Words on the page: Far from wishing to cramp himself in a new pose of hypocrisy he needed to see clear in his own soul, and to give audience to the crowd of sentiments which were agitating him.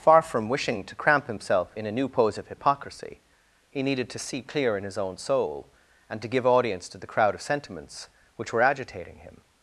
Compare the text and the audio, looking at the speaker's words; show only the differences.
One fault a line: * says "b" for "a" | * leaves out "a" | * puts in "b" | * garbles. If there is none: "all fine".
all fine